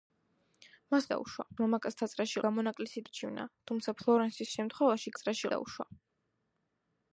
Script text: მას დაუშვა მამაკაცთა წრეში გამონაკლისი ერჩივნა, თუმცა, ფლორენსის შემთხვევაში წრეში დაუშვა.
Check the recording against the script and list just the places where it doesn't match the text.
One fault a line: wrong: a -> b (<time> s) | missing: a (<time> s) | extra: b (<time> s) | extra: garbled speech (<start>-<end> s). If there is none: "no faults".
no faults